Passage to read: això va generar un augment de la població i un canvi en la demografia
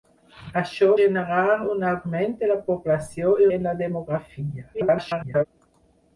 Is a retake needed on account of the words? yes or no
yes